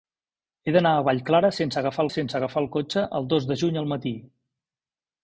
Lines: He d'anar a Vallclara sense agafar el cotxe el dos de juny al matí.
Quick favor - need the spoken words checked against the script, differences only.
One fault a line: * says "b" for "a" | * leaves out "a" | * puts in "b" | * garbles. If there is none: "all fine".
* puts in "sense agafar"